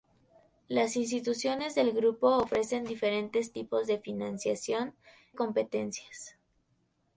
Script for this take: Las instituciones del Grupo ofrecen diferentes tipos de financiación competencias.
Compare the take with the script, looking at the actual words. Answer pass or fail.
pass